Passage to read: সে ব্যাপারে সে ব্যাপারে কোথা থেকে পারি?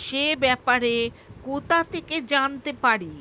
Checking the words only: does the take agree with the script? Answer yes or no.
no